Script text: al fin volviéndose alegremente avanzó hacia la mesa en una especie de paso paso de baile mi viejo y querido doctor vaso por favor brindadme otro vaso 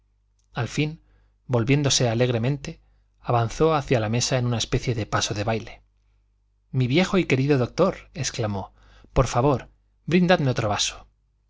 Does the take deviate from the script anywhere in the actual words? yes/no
yes